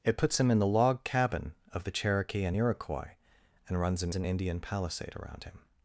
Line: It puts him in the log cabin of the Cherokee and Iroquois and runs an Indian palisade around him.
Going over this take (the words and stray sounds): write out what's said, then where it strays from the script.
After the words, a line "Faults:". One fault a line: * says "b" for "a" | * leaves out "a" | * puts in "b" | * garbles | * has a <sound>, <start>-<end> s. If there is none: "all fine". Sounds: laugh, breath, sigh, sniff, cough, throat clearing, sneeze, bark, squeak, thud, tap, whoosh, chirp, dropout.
It puts him in the log cabin of the Cherokee and Iroquois and runs an an Indian palisade around him.
Faults:
* puts in "an"